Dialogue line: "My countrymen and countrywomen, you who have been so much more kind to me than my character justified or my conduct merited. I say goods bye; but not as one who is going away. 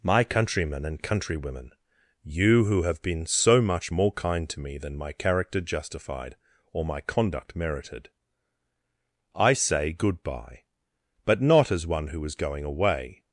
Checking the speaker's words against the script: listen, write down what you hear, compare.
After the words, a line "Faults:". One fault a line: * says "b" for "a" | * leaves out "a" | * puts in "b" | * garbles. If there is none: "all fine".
"My countrymen and countrywomen, you who have been so much more kind to me than my character justified or my conduct merited. I say good bye; but not as one who is going away.
Faults:
* says "good" for "goods"